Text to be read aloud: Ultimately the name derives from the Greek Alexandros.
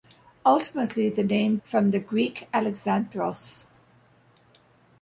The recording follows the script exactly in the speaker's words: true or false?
false